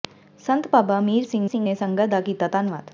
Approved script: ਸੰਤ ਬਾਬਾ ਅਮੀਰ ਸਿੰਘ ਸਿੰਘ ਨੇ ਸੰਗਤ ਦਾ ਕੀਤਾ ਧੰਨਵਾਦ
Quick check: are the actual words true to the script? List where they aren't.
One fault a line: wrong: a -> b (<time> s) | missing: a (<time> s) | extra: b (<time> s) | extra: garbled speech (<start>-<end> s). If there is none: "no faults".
no faults